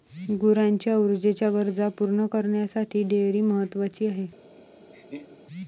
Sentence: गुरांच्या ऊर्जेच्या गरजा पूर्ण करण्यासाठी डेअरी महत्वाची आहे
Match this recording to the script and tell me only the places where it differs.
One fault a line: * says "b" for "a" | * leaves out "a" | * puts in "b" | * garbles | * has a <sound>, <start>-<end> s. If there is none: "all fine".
* has a laugh, 4.9-5.4 s